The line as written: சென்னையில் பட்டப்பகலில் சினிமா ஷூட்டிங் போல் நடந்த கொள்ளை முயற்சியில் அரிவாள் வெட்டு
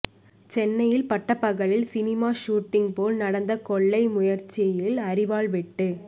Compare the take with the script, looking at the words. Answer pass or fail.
pass